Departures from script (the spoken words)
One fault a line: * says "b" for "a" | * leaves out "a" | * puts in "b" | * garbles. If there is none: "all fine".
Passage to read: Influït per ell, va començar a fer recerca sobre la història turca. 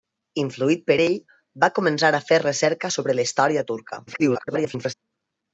* garbles